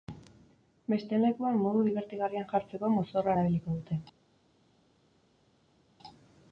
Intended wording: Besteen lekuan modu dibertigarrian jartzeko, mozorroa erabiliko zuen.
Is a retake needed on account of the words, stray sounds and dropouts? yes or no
yes